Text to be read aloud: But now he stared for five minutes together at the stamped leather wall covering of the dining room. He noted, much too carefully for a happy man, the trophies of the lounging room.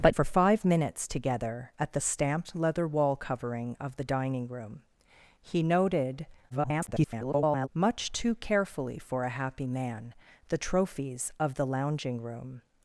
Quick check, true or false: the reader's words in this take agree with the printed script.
false